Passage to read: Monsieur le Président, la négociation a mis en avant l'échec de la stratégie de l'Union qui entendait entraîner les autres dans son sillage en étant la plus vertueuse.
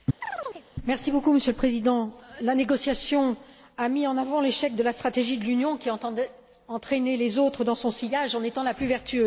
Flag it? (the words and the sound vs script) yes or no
yes